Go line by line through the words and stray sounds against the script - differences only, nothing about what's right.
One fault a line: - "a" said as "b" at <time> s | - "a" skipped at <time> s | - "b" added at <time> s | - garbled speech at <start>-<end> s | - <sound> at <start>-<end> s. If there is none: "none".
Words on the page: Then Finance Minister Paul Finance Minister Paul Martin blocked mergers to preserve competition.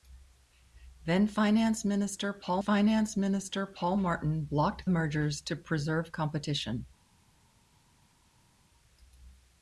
none